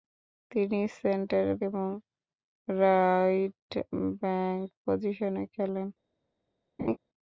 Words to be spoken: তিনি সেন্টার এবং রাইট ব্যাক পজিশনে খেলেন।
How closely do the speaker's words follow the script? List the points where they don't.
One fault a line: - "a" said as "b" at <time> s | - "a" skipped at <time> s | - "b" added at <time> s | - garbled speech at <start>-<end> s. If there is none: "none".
none